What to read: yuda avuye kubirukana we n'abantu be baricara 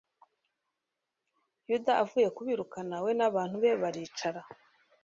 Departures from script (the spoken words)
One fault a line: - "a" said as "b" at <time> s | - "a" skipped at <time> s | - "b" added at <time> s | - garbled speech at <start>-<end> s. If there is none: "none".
none